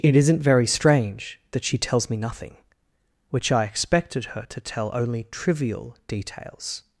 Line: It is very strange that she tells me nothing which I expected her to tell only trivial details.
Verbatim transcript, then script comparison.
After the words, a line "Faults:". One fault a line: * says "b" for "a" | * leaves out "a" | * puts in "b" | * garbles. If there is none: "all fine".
It isn't very strange that she tells me nothing which I expected her to tell only trivial details.
Faults:
* says "isn't" for "is"